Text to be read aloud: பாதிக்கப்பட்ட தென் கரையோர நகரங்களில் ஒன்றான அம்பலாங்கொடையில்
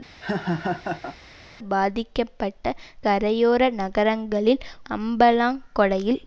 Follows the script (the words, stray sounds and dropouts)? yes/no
no